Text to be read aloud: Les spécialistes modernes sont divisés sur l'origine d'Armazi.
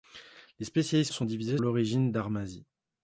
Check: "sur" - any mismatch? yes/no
yes